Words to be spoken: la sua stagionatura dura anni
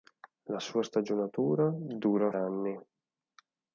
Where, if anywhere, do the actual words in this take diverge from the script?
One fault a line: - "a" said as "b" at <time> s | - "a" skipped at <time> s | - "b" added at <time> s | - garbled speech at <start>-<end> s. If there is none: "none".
none